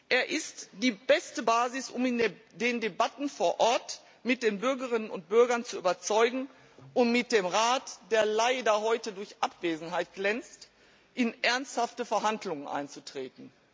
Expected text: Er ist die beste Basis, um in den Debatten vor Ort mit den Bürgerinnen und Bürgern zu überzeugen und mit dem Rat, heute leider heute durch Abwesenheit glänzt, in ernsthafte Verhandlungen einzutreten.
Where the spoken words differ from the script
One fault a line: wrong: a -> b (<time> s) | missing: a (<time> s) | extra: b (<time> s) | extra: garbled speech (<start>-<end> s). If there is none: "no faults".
wrong: heute -> der (8.1 s)